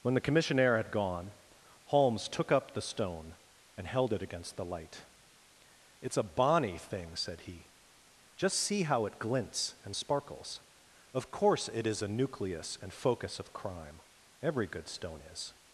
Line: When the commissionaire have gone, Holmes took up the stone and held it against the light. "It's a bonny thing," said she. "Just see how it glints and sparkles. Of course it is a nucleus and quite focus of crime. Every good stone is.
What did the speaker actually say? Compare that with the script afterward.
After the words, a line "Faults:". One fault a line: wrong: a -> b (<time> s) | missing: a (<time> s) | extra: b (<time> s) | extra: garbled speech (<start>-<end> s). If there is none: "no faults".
When the commissionaire had gone, Holmes took up the stone and held it against the light. "It's a bonny thing," said he. "Just see how it glints and sparkles. Of course it is a nucleus and focus of crime. Every good stone is.
Faults:
wrong: have -> had (0.8 s)
wrong: she -> he (7.4 s)
missing: quite (12.9 s)